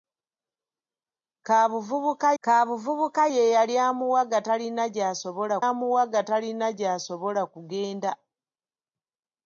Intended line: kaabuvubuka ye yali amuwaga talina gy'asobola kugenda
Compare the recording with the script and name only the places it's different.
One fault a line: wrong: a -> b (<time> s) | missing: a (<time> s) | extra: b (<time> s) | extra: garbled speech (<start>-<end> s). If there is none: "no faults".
extra: kaabuvubuka (2.4 s)
extra: amuwaga talina gy'asobola (5.7 s)